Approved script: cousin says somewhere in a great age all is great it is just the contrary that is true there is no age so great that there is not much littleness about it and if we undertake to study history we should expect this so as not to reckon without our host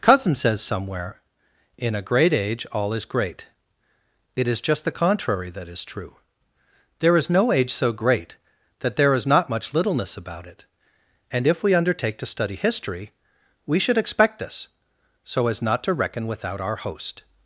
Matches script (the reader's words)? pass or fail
pass